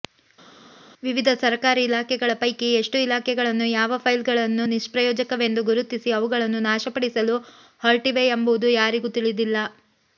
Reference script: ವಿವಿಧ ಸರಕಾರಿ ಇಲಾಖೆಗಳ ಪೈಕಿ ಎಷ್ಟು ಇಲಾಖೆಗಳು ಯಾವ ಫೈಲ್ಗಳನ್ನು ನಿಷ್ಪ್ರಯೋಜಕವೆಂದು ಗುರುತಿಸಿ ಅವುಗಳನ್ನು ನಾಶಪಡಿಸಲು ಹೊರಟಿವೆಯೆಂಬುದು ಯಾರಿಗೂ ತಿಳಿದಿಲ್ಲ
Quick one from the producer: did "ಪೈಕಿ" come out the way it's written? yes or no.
yes